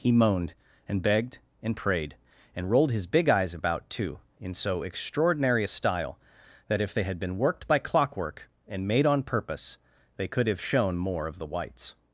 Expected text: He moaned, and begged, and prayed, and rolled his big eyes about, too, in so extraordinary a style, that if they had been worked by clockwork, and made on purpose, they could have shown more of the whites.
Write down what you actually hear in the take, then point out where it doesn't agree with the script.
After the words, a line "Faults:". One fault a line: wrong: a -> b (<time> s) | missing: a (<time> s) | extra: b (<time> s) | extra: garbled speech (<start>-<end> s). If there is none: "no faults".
He moaned, and begged, and prayed, and rolled his big eyes about, too, in so extraordinary a style, that if they had been worked by clockwork, and made on purpose, they could have shown more of the whites.
Faults:
no faults